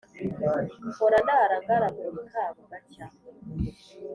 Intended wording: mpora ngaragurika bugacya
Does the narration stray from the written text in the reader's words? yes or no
yes